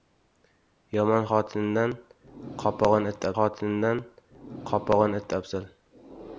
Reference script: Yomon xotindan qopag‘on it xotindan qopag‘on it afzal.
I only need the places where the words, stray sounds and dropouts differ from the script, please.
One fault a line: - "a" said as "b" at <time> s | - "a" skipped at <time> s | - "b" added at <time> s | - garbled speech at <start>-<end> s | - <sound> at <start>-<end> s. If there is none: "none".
none